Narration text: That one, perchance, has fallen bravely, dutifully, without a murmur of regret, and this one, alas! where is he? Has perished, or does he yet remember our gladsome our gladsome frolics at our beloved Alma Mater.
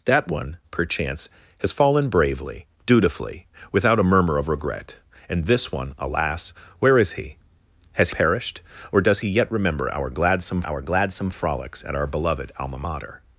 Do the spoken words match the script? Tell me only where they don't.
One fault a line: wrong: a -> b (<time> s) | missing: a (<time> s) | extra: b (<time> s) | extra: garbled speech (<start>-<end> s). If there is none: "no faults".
no faults